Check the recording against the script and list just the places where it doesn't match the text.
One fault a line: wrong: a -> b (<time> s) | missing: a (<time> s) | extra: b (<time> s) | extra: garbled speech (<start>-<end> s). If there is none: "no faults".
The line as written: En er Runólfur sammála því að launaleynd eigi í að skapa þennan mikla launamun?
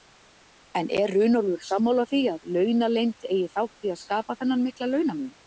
extra: þátt (3.6 s)